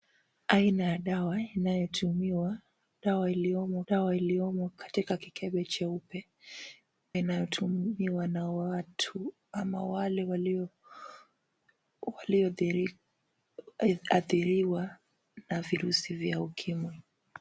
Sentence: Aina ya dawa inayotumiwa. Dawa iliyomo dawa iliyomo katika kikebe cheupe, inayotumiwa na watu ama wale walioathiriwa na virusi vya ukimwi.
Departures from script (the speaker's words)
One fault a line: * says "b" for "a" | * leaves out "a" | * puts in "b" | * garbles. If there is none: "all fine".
all fine